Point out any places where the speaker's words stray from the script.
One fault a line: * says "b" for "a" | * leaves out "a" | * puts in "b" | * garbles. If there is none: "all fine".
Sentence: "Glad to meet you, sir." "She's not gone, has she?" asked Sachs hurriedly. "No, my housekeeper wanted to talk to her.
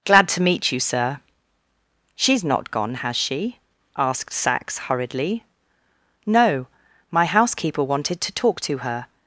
all fine